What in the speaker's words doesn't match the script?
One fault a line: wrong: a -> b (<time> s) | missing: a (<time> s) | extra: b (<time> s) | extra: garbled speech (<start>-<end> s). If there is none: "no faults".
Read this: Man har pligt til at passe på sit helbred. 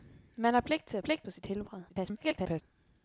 wrong: passe -> pligt (1.0 s)
extra: garbled speech (1.9-2.6 s)